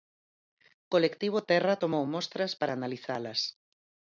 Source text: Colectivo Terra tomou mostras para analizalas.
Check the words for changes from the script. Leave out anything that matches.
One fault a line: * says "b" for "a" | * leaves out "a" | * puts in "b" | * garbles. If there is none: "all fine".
all fine